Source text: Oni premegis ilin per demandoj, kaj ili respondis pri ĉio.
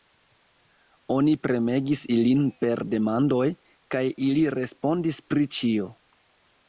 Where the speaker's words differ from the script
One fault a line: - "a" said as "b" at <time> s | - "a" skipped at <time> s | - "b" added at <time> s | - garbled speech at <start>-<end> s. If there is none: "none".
none